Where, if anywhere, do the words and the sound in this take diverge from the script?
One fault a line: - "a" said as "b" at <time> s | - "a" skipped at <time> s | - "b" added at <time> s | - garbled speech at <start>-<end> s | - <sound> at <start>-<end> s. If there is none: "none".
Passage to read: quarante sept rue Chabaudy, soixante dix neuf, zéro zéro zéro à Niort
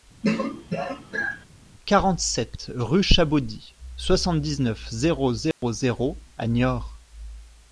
- throat clearing at 0.2-1.5 s
- dropout at 5.5-5.6 s